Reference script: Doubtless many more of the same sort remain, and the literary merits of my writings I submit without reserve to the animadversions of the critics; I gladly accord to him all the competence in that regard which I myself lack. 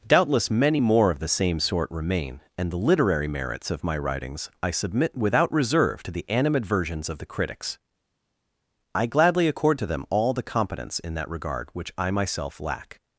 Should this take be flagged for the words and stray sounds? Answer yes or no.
yes